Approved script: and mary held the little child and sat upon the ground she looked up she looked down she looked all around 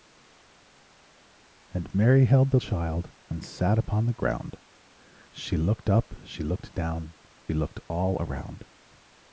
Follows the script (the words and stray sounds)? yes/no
no